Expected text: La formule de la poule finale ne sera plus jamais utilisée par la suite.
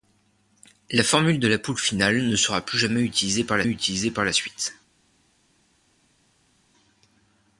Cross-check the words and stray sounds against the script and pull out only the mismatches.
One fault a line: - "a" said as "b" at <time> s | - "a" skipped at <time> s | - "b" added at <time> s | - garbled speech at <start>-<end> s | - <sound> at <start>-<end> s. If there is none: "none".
- "utilisée par la" added at 3.7 s